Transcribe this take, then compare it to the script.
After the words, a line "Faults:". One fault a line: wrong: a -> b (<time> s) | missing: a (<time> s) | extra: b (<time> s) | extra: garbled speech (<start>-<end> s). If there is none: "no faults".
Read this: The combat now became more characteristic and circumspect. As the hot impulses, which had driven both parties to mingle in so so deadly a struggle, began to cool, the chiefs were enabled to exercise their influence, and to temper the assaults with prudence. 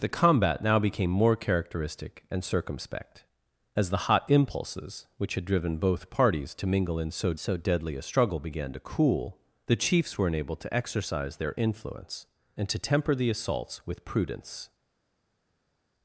The combat now became more characteristic and circumspect. As the hot impulses, which had driven both parties to mingle in so so deadly a struggle, began to cool, the chiefs were enabled to exercise their influence, and to temper the assaults with prudence.
Faults:
no faults